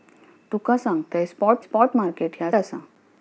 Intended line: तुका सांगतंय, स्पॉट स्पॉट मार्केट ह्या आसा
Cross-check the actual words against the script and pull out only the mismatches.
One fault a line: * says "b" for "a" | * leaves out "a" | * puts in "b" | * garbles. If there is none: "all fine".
all fine